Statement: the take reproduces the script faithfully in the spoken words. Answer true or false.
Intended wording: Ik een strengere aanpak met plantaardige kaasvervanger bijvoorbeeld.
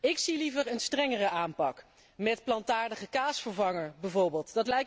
false